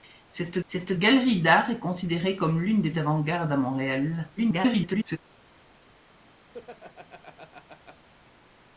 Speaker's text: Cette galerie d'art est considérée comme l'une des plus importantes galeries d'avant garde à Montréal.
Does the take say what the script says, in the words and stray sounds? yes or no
no